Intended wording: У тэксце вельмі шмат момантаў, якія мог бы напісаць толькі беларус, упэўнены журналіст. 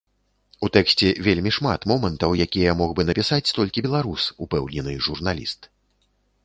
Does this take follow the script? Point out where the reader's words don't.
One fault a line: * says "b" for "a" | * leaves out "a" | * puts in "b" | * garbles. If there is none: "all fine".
all fine